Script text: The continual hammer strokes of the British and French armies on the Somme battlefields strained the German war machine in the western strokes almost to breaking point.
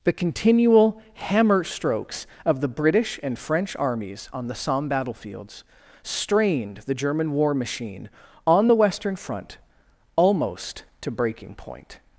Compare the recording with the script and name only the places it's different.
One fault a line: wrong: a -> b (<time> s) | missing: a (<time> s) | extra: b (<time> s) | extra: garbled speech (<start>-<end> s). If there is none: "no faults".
wrong: in -> on (8.5 s)
wrong: strokes -> front (9.2 s)